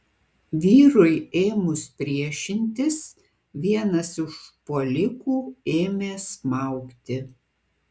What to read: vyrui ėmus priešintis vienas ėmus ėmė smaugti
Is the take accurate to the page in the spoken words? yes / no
no